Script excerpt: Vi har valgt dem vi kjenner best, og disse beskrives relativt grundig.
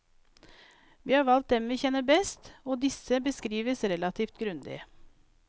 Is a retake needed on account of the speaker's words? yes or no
no